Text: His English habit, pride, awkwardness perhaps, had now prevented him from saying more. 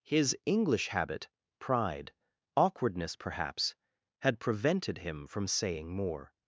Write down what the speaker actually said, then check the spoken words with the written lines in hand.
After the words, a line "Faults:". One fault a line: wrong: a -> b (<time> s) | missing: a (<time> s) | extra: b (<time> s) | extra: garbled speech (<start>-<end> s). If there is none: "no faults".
His English habit, pride, awkwardness perhaps, had prevented him from saying more.
Faults:
missing: now (4.4 s)